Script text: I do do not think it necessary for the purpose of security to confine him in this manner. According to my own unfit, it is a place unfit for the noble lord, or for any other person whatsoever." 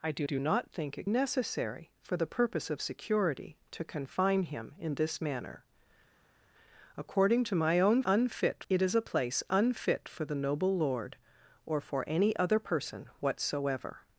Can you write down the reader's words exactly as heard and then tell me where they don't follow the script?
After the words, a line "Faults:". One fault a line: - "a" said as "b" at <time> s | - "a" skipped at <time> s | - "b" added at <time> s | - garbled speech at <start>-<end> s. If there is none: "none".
I do do not think it necessary for the purpose of security to confine him in this manner. According to my own unfit, it is a place unfit for the noble lord, or for any other person whatsoever."
Faults:
none